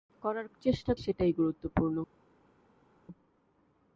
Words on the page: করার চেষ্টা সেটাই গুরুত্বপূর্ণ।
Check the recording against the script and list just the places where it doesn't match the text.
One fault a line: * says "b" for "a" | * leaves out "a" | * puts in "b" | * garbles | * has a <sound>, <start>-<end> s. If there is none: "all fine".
all fine